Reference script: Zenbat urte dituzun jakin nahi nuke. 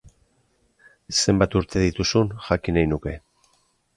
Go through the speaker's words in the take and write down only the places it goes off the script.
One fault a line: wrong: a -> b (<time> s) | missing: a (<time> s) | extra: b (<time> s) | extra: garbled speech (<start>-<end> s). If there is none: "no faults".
no faults